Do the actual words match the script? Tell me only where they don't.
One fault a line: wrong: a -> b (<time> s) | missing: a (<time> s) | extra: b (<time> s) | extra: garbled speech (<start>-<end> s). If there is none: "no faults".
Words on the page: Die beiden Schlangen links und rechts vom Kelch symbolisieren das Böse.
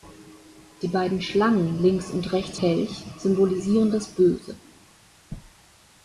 missing: vom (2.6 s)